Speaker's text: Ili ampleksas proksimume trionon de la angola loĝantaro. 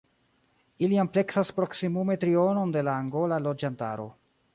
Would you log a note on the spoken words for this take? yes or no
no